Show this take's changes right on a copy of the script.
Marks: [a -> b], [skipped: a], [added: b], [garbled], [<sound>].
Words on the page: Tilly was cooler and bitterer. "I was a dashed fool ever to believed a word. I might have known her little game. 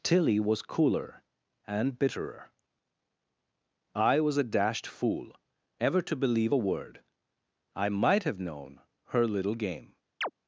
Tilly was cooler and bitterer. "I was a dashed fool ever to [believed -> believe] a word. I might have known her little game. [chirp]